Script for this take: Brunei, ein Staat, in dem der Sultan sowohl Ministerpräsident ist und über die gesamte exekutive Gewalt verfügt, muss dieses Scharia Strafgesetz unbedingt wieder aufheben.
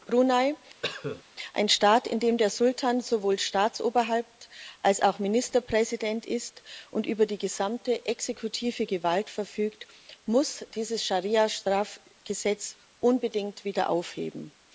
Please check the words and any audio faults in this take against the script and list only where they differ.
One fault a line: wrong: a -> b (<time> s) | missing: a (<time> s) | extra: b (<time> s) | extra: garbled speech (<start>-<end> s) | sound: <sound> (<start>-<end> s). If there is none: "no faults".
sound: cough (0.8-1.2 s)
extra: Staatsoberhaupt als auch (3.4 s)